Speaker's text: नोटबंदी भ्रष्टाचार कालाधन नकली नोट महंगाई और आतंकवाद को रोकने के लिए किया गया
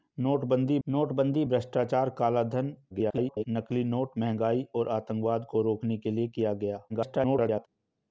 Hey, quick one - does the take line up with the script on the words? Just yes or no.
no